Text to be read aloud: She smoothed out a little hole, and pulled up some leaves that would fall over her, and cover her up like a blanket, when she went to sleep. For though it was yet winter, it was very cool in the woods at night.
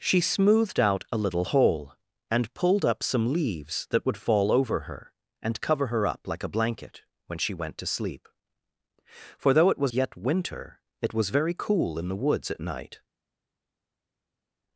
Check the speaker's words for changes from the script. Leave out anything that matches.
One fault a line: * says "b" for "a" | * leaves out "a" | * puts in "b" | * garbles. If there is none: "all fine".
all fine